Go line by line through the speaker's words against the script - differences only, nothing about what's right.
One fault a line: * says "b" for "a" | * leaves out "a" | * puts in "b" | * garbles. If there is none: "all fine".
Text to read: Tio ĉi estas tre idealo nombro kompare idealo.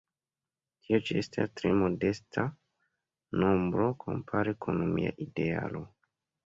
* says "modesta" for "idealo"
* puts in "kun mia"